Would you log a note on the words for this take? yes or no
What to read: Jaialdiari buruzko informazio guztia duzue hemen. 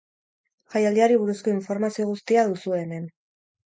no